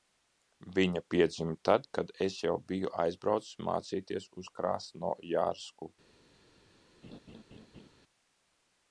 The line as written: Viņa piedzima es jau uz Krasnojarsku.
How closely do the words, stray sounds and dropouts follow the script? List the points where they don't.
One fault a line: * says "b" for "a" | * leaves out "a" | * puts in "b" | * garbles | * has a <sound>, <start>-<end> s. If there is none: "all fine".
* puts in "tad kad"
* puts in "biju aizbraucis mācīties"
* has a laugh, 7.0-7.9 s